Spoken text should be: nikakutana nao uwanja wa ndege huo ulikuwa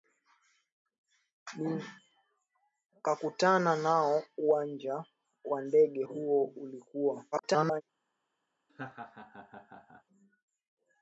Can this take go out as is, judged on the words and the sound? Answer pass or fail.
fail